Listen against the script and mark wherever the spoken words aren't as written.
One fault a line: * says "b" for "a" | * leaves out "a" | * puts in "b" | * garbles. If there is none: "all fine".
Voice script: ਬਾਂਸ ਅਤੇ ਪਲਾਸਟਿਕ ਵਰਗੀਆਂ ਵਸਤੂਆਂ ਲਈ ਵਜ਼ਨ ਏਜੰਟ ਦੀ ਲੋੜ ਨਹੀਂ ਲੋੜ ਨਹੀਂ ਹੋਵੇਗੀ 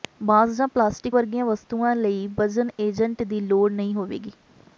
* says "ਜਾਂ" for "ਅਤੇ"
* leaves out "ਲੋੜ ਨਹੀਂ"